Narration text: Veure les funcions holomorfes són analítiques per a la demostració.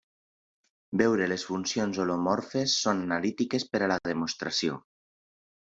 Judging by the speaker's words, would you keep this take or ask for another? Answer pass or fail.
pass